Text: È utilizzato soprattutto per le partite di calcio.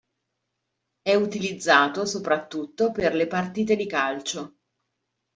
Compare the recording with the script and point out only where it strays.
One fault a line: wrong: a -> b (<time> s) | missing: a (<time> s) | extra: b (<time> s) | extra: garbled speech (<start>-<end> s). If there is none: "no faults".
no faults